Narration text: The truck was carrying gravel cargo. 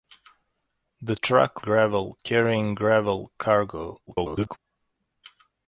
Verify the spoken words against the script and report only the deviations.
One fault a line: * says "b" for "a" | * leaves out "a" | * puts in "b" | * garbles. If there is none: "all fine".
* says "gravel" for "was"
* garbles